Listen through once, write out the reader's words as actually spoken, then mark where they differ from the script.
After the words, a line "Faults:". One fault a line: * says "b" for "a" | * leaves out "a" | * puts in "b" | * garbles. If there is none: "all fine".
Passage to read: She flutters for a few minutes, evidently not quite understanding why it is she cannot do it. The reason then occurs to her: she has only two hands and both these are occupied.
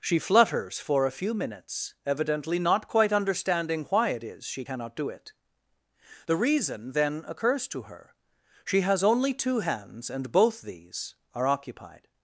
She flutters for a few minutes, evidently not quite understanding why it is she cannot do it. The reason then occurs to her: she has only two hands and both these are occupied.
Faults:
all fine